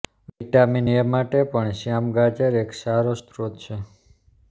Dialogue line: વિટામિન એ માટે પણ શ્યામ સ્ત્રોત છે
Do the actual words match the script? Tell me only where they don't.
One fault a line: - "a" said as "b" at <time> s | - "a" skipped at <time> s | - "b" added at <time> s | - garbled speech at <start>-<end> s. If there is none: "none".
- "ગાજર એક સારો" added at 2.2 s